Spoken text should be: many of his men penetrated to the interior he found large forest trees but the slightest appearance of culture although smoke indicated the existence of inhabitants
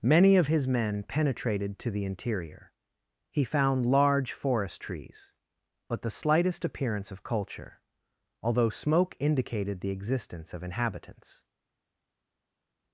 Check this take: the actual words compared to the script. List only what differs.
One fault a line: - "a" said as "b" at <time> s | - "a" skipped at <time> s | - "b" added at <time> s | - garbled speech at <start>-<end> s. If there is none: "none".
none